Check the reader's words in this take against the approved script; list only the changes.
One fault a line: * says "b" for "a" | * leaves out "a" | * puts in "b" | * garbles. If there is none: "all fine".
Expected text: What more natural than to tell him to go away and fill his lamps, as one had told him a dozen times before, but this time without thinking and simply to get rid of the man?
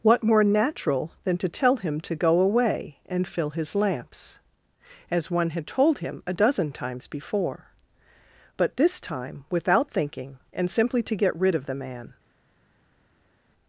all fine